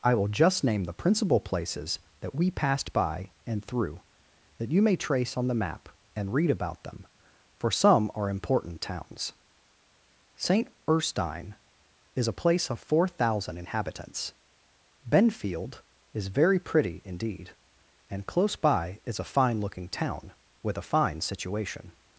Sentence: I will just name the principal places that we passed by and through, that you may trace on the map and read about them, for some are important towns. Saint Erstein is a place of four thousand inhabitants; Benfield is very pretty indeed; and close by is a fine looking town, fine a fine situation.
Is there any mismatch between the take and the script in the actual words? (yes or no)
yes